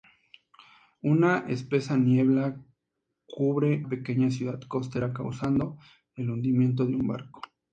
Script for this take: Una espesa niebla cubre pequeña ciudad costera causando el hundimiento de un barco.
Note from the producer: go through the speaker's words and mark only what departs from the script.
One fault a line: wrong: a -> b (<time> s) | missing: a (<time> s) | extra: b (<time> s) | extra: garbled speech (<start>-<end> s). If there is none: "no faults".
no faults